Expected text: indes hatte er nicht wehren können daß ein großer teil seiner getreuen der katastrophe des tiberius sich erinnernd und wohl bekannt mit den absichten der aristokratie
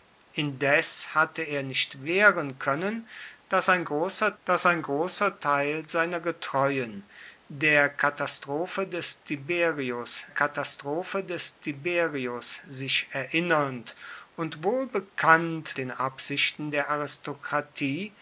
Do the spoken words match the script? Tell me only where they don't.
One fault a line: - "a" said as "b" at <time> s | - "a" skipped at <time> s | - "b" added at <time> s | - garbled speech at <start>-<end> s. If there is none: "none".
- "daß ein großer" added at 4.4 s
- "katastrophe des tiberius" added at 10.3 s
- "mit" skipped at 15.8 s